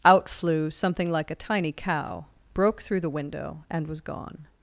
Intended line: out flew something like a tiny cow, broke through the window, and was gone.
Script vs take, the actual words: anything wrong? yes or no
no